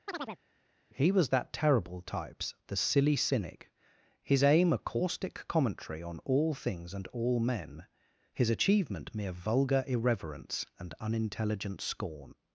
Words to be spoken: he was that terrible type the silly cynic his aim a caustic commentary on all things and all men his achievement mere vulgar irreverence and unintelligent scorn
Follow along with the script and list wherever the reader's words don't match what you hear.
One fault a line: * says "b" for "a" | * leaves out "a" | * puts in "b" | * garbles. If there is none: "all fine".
* says "types" for "type"